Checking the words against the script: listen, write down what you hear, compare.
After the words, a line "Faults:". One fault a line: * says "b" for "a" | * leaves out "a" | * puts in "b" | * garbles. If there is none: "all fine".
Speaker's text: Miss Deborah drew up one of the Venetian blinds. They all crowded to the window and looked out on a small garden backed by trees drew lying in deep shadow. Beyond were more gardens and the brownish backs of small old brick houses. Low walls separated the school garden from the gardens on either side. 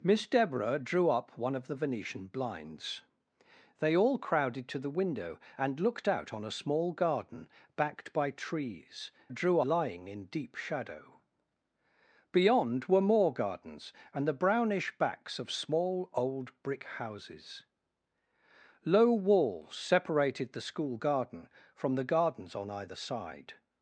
Miss Deborah drew up one of the Venetian blinds. They all crowded to the window and looked out on a small garden backed by trees drew lying in deep shadow. Beyond were more gardens and the brownish backs of small old brick houses. Low walls separated the school garden from the gardens on either side.
Faults:
all fine